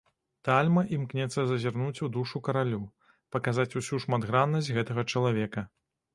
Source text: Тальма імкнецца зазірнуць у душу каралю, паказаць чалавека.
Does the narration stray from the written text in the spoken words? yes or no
yes